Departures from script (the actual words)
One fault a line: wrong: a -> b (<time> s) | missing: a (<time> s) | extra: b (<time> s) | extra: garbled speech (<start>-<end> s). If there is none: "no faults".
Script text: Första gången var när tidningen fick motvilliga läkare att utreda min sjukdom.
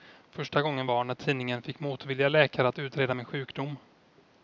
no faults